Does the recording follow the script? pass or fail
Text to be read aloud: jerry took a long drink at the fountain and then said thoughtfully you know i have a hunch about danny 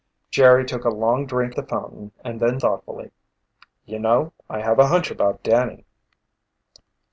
fail